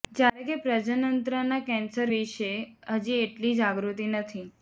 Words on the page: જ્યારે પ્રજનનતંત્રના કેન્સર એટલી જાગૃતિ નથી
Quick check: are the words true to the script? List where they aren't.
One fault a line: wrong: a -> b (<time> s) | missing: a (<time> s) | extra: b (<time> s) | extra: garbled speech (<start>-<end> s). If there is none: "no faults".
extra: કે (0.5 s)
extra: વિશે હજી (2.1 s)